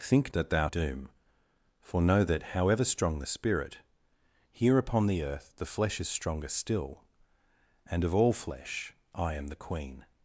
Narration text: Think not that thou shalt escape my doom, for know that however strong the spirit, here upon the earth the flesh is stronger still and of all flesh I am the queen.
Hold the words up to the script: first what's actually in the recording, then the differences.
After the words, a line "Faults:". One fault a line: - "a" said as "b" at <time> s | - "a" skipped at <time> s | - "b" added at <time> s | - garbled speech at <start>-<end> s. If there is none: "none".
Think that thou doom, for know that however strong the spirit, here upon the earth the flesh is stronger still and of all flesh I am the queen.
Faults:
- "not" skipped at 0.3 s
- "shalt escape my" skipped at 0.7 s